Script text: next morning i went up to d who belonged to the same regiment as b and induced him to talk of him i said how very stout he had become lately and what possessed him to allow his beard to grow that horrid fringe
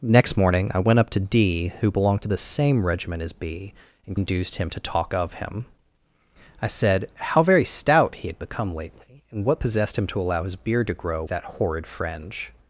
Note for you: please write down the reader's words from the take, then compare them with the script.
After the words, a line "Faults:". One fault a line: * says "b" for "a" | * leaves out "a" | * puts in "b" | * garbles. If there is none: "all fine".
next morning i went up to d who belonged to the same regiment as b and induced him to talk of him i said how very stout he had become lately and what possessed him to allow his beard to grow that horrid fringe
Faults:
all fine